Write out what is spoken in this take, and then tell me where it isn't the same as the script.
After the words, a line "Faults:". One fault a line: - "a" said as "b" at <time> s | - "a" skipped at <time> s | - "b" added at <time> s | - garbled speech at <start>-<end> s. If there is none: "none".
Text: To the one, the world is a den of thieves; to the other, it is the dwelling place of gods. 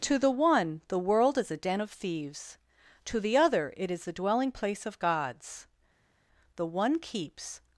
To the one, the world is a den of thieves; to the other, it is the dwelling place of gods. The one keeps
Faults:
- "The one keeps" added at 6.6 s